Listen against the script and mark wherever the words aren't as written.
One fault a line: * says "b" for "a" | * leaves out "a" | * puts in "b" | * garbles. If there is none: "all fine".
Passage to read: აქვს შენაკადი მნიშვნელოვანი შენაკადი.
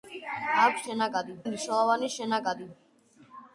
all fine